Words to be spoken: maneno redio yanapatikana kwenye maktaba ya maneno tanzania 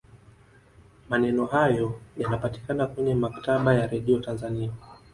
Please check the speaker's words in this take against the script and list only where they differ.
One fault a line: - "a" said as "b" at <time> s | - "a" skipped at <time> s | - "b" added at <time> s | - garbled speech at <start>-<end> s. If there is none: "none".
- "redio" said as "hayo" at 1.4 s
- "maneno" said as "redio" at 3.9 s